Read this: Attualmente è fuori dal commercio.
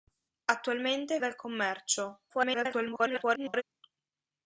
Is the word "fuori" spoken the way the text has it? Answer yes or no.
no